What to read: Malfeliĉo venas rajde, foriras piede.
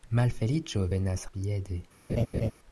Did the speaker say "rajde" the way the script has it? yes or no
no